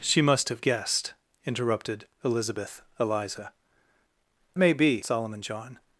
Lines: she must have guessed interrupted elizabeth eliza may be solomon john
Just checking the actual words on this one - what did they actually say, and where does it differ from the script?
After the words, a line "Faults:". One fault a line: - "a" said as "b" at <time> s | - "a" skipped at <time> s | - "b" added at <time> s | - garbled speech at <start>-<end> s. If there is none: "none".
she must have guessed interrupted elizabeth eliza may be solomon john
Faults:
none